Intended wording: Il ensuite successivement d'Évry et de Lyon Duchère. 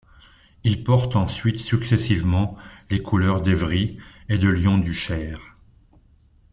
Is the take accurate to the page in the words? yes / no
no